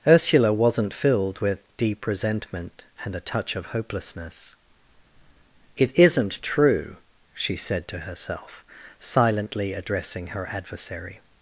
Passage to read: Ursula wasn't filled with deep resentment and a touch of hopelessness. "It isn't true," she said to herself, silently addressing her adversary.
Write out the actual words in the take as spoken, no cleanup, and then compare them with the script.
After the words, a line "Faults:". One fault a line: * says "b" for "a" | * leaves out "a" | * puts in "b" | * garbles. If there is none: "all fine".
Ursula wasn't filled with deep resentment and a touch of hopelessness. "It isn't true," she said to herself, silently addressing her adversary.
Faults:
all fine